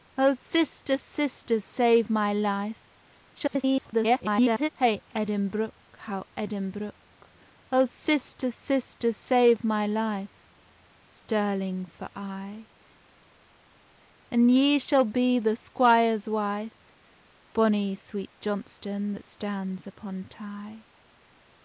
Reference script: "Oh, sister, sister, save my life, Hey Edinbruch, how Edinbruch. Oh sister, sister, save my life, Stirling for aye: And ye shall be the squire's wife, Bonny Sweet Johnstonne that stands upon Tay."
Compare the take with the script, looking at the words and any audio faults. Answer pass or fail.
fail